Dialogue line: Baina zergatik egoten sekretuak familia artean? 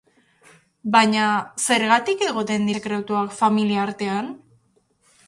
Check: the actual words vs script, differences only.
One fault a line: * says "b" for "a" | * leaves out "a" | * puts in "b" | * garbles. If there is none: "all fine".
all fine